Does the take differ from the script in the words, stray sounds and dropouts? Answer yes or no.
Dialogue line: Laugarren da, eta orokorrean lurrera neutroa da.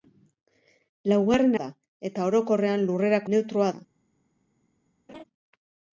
yes